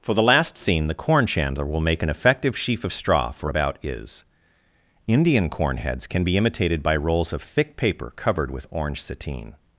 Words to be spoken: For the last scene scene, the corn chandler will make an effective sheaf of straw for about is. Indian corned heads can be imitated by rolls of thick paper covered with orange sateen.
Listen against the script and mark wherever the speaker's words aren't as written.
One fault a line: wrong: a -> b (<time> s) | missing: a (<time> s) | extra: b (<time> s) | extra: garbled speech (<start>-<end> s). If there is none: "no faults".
missing: scene (0.9 s)
wrong: corned -> corn (5.5 s)